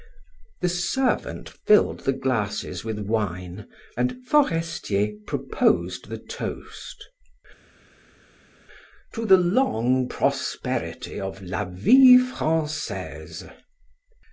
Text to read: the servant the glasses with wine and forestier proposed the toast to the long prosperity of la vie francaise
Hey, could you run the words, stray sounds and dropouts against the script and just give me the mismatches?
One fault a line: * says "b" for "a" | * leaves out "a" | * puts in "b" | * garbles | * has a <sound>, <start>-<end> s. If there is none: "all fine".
* puts in "filled"